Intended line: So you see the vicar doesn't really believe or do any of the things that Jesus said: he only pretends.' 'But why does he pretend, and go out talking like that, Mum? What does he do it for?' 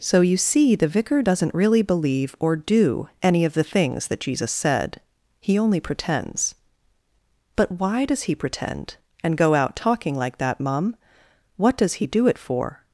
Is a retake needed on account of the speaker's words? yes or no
no